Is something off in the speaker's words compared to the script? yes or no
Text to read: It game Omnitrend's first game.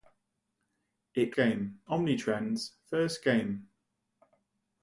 no